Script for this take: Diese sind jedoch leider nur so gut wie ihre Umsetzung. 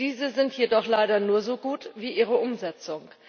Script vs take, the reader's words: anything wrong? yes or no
no